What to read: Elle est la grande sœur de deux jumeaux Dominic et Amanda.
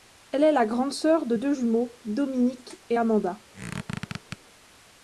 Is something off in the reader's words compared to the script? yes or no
no